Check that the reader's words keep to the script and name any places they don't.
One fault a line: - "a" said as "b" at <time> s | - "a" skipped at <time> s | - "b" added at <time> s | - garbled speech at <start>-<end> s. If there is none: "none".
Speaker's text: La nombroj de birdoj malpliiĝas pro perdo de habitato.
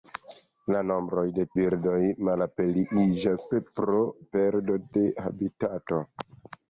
none